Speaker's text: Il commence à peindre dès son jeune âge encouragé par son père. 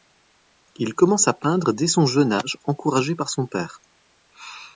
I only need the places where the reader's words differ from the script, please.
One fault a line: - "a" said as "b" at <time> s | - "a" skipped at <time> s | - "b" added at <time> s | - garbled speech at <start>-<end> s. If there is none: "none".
none